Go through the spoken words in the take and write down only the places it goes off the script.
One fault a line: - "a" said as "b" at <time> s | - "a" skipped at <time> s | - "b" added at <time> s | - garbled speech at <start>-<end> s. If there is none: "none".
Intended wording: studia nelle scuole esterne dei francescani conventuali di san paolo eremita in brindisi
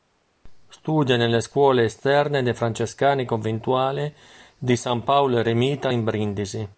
none